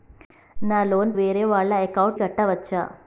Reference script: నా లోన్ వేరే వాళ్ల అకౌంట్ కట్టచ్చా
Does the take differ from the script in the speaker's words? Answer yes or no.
no